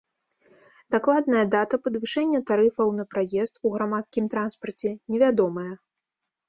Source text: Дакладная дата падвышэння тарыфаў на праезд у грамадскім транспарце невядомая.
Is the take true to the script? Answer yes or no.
yes